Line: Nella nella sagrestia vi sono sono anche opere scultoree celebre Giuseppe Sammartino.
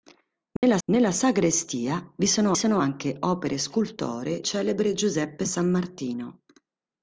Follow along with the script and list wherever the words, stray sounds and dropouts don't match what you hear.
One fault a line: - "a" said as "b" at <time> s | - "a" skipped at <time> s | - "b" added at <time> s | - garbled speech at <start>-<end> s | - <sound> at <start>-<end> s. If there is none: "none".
- dropout at 0.6-0.6 s